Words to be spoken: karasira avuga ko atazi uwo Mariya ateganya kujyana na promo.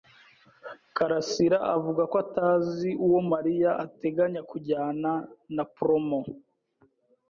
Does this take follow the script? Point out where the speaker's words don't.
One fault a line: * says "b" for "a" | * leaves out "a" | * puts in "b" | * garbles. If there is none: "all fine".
all fine